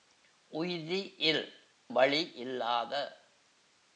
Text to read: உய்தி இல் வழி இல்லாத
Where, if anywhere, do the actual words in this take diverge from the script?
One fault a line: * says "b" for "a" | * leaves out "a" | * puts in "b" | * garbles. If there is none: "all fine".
all fine